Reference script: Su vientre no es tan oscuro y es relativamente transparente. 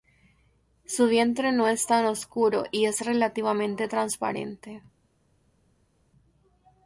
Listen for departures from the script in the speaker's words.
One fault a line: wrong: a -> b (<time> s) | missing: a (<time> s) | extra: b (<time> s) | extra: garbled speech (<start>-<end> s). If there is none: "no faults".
no faults